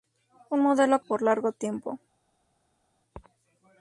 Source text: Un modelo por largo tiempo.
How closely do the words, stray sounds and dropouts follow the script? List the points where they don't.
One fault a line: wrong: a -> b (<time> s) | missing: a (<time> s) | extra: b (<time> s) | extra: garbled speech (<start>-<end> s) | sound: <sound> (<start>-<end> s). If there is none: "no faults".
no faults